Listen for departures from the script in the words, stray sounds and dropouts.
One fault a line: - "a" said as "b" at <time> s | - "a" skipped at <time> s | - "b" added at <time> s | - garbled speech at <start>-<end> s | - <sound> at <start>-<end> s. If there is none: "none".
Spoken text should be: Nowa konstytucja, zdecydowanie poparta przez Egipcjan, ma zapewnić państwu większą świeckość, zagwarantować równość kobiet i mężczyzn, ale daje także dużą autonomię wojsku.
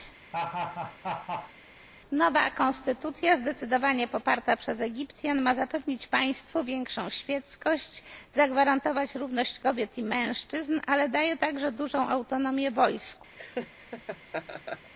- laugh at 0.3-1.5 s
- laugh at 13.4-14.9 s